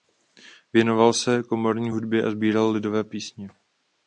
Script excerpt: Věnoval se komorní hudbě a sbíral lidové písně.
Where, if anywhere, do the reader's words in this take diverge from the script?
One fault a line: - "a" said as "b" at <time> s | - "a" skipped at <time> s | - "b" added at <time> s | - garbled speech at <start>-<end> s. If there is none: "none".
none